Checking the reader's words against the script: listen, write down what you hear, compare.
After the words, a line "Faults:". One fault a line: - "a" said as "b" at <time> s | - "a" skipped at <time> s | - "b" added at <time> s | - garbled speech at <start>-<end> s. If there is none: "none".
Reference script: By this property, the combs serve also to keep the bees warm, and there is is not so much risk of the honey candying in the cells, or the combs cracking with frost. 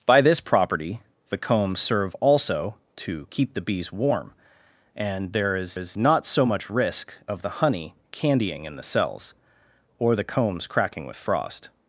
By this property, the combs serve also to keep the bees warm, and there is is not so much risk of the honey candying in the cells, or the combs cracking with frost.
Faults:
none